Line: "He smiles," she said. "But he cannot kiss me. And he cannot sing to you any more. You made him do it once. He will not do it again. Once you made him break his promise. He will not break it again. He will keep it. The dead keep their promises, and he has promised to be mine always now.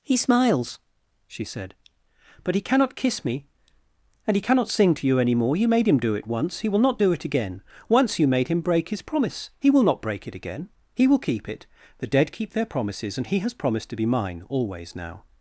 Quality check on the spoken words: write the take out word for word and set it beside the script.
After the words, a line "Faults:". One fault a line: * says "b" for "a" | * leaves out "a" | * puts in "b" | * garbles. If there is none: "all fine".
"He smiles," she said. "But he cannot kiss me. And he cannot sing to you any more. You made him do it once. He will not do it again. Once you made him break his promise. He will not break it again. He will keep it. The dead keep their promises, and he has promised to be mine always now.
Faults:
all fine